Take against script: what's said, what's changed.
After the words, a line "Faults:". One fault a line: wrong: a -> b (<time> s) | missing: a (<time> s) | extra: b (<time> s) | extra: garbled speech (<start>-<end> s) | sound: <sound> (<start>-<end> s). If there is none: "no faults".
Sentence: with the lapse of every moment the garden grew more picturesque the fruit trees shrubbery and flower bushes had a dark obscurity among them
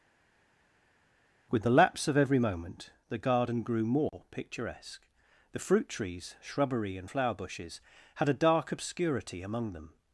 with the lapse of every moment the garden grew more picturesque the fruit trees shrubbery and flower bushes had a dark obscurity among them
Faults:
no faults